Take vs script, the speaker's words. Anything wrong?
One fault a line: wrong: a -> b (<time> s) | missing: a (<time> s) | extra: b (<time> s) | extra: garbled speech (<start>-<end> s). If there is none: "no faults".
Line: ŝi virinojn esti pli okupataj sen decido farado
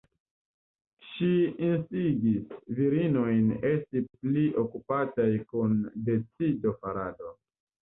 extra: instigis (1.7 s)
wrong: sen -> kun (5.5 s)